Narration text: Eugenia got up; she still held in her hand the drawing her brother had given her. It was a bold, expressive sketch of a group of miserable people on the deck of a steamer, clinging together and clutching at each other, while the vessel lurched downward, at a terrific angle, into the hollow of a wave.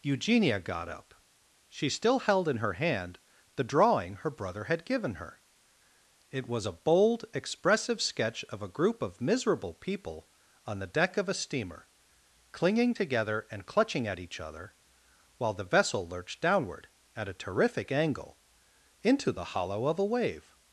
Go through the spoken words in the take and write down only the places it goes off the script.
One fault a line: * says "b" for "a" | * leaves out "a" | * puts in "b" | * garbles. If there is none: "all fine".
all fine